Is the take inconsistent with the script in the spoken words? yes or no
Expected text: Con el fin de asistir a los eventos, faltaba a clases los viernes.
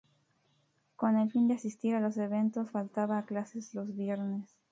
no